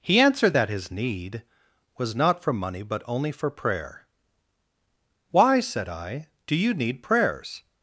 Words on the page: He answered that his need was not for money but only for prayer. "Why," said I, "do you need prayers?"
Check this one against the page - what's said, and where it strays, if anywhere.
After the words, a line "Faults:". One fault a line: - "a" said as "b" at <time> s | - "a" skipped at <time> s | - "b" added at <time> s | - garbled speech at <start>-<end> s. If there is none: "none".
He answered that his need was not for money but only for prayer. "Why," said I, "do you need prayers?"
Faults:
none